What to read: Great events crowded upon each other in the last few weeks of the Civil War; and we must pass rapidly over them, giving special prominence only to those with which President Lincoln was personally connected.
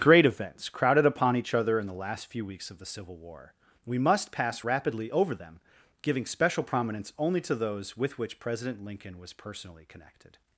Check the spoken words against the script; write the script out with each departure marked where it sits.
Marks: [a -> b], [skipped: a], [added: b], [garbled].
Great events crowded upon each other in the last few weeks of the Civil War; [skipped: and] we must pass rapidly over them, giving special prominence only to those with which President Lincoln was personally connected.